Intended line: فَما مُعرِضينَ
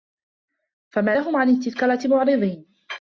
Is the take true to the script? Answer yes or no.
no